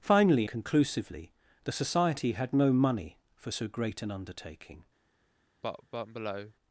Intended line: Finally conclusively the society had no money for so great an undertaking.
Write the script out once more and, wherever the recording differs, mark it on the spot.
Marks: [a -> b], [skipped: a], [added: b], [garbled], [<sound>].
Finally conclusively the society had no money for so great an undertaking. [cough]